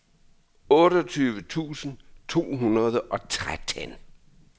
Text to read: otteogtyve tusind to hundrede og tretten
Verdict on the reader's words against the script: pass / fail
pass